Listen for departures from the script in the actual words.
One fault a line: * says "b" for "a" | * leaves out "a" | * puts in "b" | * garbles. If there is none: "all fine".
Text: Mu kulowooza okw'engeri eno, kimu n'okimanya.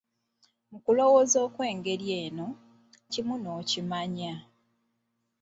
all fine